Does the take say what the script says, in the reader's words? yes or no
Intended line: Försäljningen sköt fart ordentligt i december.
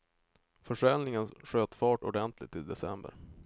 yes